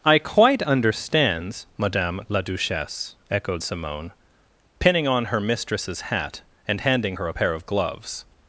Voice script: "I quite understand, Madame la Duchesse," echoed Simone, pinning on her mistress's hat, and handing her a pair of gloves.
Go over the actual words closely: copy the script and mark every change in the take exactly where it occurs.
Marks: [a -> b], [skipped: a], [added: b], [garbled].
"I quite [understand, -> understands] Madame la Duchesse," echoed Simone, pinning on her mistress's hat, and handing her a pair of gloves.